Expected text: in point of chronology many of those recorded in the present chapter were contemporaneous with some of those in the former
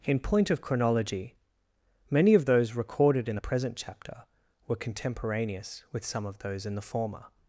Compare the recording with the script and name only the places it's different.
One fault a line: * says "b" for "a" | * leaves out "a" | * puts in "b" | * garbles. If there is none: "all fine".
all fine